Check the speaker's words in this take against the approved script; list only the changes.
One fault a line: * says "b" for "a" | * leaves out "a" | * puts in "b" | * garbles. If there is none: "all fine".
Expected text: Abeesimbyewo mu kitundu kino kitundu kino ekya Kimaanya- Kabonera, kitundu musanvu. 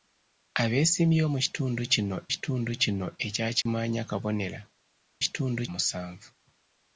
all fine